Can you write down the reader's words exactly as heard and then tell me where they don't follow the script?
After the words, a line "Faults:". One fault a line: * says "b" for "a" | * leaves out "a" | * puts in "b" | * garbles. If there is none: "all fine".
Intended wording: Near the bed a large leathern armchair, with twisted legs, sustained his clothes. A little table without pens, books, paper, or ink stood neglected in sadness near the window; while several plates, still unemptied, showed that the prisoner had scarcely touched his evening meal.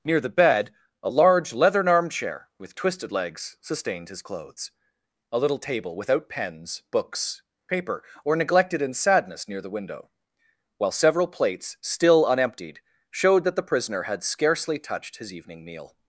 Near the bed a large leathern armchair, with twisted legs, sustained his clothes. A little table without pens, books, paper, or neglected in sadness near the window; while several plates, still unemptied, showed that the prisoner had scarcely touched his evening meal.
Faults:
* leaves out "ink stood"